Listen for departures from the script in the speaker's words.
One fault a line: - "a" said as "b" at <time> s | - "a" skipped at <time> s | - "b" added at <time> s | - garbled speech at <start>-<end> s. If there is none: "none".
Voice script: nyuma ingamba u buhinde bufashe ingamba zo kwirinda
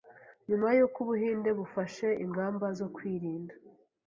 - "ingamba" said as "y'uko" at 0.8 s